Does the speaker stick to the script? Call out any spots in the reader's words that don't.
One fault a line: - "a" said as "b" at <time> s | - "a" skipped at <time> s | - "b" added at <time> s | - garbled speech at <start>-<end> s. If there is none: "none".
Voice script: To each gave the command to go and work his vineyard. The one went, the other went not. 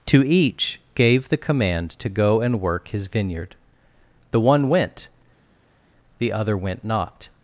none